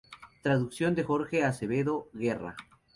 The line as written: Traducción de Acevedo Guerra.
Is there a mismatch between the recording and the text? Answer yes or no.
yes